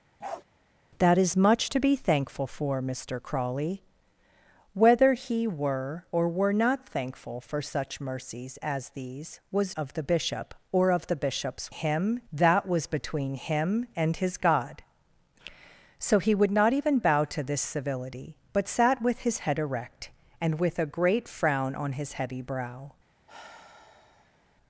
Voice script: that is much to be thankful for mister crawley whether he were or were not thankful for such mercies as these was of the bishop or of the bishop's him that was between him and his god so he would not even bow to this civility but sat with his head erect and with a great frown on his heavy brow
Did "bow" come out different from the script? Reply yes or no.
no